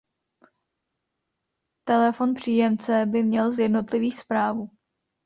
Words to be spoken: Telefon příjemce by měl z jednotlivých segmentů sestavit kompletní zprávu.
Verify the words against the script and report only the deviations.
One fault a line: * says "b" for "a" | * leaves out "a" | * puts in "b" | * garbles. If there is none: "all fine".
* leaves out "segmentů sestavit kompletní"